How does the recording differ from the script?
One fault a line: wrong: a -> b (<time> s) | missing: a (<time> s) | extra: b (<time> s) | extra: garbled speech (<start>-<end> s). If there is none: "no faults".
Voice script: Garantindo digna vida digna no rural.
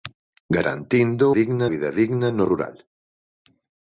no faults